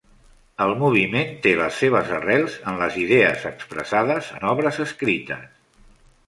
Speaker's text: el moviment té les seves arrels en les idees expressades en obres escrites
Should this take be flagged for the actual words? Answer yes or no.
no